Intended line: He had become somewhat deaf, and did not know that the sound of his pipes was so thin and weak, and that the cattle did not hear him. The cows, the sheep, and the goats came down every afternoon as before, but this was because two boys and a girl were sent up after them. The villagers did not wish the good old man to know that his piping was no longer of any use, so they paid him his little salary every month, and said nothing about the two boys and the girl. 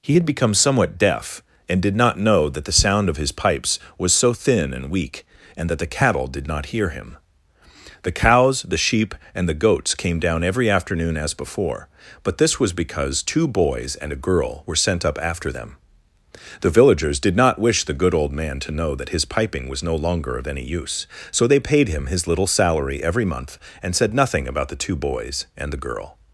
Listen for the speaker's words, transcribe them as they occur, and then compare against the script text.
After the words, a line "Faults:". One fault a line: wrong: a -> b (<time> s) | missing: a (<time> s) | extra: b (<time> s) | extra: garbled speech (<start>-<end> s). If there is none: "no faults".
He had become somewhat deaf, and did not know that the sound of his pipes was so thin and weak, and that the cattle did not hear him. The cows, the sheep, and the goats came down every afternoon as before, but this was because two boys and a girl were sent up after them. The villagers did not wish the good old man to know that his piping was no longer of any use, so they paid him his little salary every month, and said nothing about the two boys and the girl.
Faults:
no faults